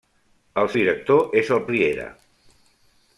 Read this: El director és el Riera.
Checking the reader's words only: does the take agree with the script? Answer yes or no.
yes